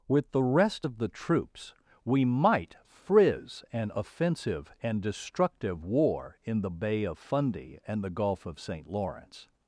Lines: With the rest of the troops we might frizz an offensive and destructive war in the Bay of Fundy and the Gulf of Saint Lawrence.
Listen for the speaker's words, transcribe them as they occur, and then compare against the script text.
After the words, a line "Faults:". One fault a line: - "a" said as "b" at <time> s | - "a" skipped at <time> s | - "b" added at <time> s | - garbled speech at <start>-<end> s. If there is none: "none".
With the rest of the troops we might frizz an offensive and destructive war in the Bay of Fundy and the Gulf of Saint Lawrence.
Faults:
none